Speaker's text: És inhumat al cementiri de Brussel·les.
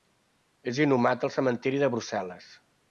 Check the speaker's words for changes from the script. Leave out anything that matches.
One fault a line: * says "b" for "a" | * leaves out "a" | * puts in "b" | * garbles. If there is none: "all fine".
all fine